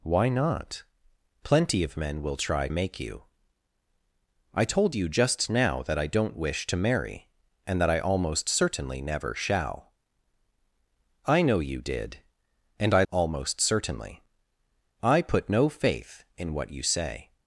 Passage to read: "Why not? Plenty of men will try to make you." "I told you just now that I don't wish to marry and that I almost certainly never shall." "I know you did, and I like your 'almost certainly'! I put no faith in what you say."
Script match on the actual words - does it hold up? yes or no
no